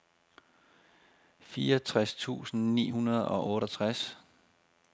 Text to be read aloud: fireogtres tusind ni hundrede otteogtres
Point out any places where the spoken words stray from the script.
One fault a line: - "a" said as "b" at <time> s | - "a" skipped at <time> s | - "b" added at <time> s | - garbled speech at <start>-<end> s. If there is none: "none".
- "og" added at 3.3 s